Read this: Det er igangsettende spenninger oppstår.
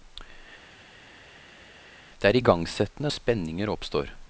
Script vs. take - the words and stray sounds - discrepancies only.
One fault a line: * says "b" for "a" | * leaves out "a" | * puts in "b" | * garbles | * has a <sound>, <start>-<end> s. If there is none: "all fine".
all fine